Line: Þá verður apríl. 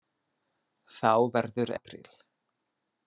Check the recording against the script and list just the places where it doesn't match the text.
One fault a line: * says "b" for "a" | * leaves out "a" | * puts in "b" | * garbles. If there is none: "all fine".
all fine